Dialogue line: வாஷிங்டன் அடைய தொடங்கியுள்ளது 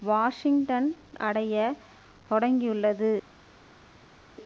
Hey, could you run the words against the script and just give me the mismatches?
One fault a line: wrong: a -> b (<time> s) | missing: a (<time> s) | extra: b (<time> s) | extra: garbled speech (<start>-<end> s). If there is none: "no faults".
no faults